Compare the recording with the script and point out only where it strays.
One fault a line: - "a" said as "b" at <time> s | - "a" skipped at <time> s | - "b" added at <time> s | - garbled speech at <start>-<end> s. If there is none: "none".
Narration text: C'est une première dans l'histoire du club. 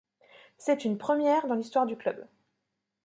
none